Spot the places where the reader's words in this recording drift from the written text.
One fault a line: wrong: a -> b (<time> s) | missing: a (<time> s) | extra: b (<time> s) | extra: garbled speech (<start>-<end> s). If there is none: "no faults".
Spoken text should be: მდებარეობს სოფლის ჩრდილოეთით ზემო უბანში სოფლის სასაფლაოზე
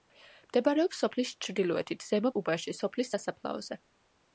no faults